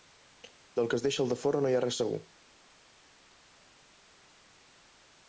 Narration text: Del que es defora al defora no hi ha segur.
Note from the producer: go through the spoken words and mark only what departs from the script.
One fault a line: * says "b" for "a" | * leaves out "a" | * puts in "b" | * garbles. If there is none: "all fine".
* says "deixa" for "defora"
* puts in "res"